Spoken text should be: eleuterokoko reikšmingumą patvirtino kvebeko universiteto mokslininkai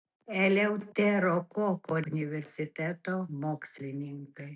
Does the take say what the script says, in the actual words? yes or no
no